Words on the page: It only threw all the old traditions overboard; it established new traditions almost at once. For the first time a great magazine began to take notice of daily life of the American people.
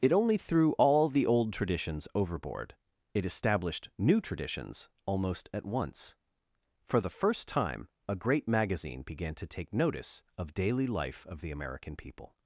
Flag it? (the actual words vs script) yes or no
no